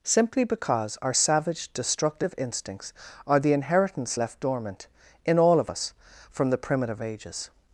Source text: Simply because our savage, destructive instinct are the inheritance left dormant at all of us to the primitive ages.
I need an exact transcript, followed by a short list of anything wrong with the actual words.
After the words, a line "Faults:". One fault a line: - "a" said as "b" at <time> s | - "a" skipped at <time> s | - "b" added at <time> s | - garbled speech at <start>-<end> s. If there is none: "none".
Simply because our savage, destructive instincts are the inheritance left dormant in all of us from the primitive ages.
Faults:
- "instinct" said as "instincts" at 2.4 s
- "at" said as "in" at 5.3 s
- "to" said as "from" at 6.3 s